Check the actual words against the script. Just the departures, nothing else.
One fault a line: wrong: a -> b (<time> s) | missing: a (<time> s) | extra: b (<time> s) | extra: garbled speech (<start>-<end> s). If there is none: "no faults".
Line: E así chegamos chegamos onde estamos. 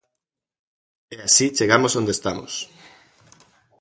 missing: chegamos (1.9 s)